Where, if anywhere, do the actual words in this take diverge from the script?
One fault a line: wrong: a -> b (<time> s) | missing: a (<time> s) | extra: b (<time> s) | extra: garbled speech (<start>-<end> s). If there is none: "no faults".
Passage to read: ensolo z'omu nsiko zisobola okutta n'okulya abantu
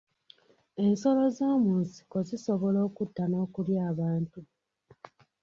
no faults